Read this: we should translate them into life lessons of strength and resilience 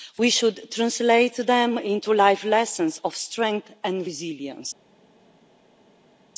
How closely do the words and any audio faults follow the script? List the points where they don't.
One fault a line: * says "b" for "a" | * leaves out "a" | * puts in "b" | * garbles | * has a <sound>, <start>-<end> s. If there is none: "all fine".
all fine